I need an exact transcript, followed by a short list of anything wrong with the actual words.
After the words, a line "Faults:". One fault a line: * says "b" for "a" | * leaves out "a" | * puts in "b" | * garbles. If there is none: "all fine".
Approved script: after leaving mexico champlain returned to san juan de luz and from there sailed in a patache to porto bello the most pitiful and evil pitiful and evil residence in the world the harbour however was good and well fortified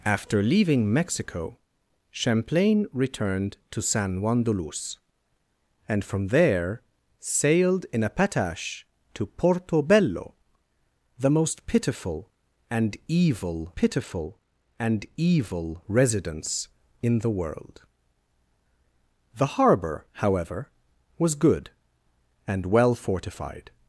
after leaving mexico champlain returned to san juan de luz and from there sailed in a patache to porto bello the most pitiful and evil pitiful and evil residence in the world the harbour however was good and well fortified
Faults:
all fine